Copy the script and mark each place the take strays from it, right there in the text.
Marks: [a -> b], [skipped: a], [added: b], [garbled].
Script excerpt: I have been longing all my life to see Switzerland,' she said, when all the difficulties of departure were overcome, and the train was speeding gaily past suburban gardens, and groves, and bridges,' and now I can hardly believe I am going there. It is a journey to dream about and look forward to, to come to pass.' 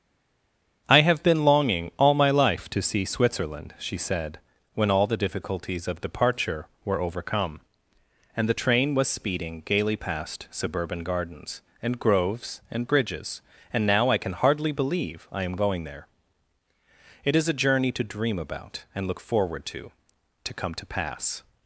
I have been longing all my life to see Switzerland,' she said, when all the difficulties of departure were overcome, and the train was speeding gaily past suburban gardens, and groves, and bridges,' and now I can hardly believe I am going there. It is a journey to dream about and look forward to, to come to pass.'